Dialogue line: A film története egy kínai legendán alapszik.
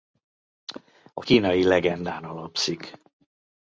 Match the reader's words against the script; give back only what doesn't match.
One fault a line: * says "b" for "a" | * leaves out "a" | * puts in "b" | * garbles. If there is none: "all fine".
* leaves out "film története egy"